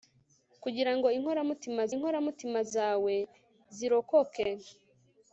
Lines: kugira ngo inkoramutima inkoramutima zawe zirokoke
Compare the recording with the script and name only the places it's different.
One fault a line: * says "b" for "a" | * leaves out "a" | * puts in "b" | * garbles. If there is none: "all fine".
all fine